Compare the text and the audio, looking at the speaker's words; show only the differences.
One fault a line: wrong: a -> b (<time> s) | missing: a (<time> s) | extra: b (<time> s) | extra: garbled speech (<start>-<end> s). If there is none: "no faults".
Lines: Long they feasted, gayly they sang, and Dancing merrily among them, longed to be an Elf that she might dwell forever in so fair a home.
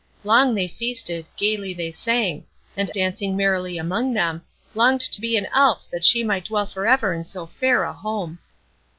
no faults